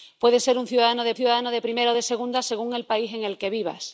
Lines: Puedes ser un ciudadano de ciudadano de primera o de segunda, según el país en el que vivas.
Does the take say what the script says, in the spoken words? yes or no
yes